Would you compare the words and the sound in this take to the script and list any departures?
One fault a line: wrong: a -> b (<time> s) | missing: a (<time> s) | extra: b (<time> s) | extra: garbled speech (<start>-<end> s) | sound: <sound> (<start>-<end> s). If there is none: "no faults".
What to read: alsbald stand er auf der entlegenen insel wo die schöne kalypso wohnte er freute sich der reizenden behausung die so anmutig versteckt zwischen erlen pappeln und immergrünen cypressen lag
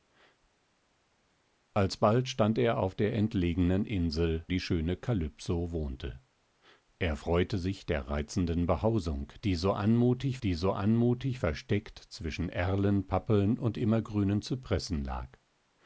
missing: wo (4.4 s)
extra: die so anmutig (10.4 s)